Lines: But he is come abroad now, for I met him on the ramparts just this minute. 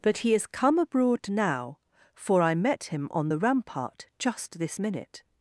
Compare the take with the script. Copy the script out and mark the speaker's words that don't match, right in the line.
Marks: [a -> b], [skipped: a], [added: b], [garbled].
But he is come abroad now, for I met him on the [ramparts -> rampart] just this minute.